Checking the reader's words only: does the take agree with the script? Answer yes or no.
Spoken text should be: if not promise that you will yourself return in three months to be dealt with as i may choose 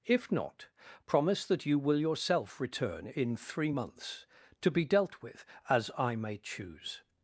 yes